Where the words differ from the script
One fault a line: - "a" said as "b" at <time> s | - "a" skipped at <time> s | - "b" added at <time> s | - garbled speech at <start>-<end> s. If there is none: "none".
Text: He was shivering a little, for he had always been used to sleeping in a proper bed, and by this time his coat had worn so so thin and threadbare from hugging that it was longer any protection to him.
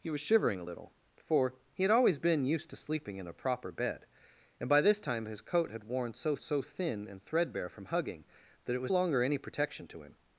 none